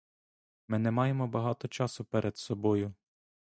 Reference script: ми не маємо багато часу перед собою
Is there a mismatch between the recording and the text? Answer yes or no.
no